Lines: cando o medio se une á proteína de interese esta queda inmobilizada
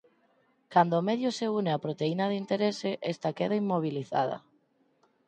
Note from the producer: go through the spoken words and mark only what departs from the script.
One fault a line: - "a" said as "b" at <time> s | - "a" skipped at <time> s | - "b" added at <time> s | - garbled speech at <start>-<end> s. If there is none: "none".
none